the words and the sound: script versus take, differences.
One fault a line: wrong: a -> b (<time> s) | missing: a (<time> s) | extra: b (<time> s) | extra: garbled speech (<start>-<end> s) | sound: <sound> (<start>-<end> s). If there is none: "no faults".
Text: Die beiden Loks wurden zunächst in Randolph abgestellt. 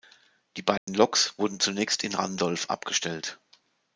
sound: dropout (0.8-0.9 s)